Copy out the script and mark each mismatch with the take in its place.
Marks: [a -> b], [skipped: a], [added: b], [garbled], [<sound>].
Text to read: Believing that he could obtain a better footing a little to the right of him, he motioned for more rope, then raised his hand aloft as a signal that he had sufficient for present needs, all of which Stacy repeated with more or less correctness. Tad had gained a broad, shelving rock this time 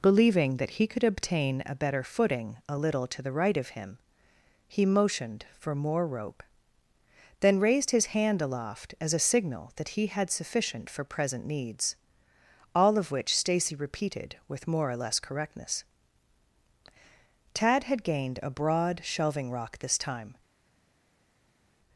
Believing that he could obtain a better footing a little to the right of him, he motioned for more rope, then raised his hand aloft as a signal that he had sufficient for present needs, all of which Stacy repeated with more or less correctness. Tad had gained a broad, shelving rock this time